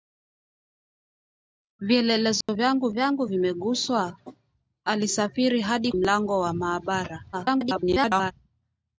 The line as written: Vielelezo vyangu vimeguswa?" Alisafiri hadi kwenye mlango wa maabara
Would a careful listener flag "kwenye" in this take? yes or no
yes